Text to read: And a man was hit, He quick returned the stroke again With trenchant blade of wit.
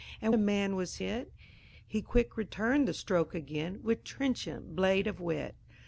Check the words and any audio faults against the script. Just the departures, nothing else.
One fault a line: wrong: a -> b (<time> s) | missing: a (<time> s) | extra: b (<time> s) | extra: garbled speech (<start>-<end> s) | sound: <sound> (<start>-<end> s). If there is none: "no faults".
no faults